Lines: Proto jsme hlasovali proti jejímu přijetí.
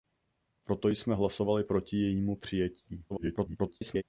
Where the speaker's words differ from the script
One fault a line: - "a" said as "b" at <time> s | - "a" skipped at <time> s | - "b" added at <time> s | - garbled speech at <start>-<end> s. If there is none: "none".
- garbled speech at 3.1-4.0 s